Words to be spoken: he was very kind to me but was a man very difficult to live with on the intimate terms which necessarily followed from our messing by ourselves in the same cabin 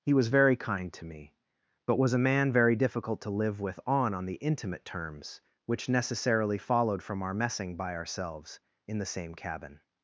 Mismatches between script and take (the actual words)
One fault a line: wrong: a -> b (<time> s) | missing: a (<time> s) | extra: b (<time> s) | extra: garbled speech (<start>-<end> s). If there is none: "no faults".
extra: on (4.1 s)